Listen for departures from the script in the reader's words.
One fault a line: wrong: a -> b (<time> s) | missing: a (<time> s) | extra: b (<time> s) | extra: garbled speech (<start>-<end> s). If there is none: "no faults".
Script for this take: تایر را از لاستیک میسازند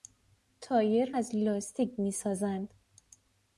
missing: را (1.1 s)